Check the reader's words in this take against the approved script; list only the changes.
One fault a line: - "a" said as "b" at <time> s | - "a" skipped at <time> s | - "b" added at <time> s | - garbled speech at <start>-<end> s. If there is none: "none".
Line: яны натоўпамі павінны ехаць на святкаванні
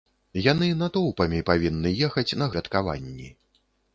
none